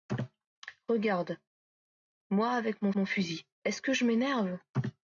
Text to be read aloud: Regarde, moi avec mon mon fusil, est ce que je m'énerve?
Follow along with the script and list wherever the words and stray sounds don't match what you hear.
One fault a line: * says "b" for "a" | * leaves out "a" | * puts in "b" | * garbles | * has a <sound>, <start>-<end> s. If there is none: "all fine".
all fine